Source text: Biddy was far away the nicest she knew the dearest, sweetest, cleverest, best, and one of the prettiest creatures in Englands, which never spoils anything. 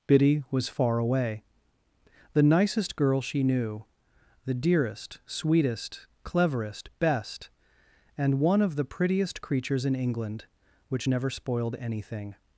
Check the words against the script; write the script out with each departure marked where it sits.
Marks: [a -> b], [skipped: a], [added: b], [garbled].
Biddy was far away the nicest [added: girl] she knew the dearest, sweetest, cleverest, best, and one of the prettiest creatures in [Englands, -> England] which never [spoils -> spoiled] anything.